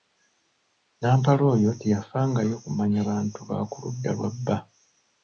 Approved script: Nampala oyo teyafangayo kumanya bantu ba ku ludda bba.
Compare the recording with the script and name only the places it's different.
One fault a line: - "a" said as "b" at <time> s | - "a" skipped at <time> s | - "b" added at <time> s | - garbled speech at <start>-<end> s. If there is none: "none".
- "lwa" added at 4.2 s